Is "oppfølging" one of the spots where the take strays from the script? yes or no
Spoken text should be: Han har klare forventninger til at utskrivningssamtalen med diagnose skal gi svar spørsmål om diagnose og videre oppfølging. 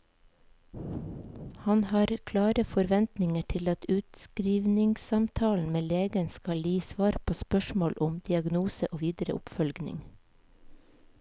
no